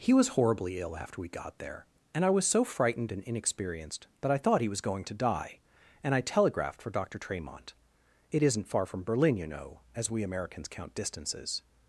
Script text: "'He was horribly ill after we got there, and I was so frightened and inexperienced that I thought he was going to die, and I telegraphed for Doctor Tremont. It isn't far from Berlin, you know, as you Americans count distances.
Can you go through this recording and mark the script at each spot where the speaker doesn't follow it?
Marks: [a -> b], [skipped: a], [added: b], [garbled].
"'He was horribly ill after we got there, and I was so frightened and inexperienced that I thought he was going to die, and I telegraphed for Doctor Tremont. It isn't far from Berlin, you know, as [you -> we] Americans count distances.